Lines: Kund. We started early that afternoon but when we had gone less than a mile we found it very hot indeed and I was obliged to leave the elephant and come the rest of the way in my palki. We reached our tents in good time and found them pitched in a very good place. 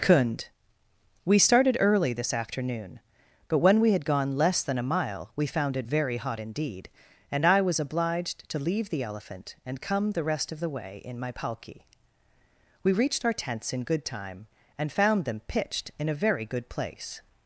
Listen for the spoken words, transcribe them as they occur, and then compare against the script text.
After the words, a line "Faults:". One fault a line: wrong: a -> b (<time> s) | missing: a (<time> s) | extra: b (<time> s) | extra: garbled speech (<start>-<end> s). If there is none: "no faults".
Kund. We started early this afternoon but when we had gone less than a mile we found it very hot indeed and I was obliged to leave the elephant and come the rest of the way in my palki. We reached our tents in good time and found them pitched in a very good place.
Faults:
wrong: that -> this (2.1 s)